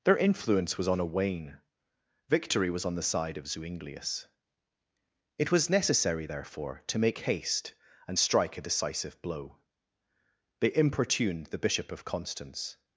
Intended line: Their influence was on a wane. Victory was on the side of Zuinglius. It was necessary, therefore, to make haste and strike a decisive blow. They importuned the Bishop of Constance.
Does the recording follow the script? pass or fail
pass